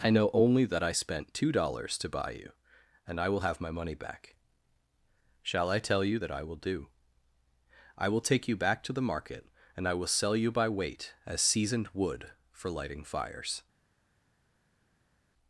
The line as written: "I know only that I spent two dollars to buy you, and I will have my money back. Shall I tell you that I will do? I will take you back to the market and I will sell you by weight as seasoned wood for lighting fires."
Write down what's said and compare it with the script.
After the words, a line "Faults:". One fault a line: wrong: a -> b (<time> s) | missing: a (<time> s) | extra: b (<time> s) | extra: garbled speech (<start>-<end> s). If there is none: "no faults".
"I know only that I spent two dollars to buy you, and I will have my money back. Shall I tell you that I will do? I will take you back to the market and I will sell you by weight as seasoned wood for lighting fires."
Faults:
no faults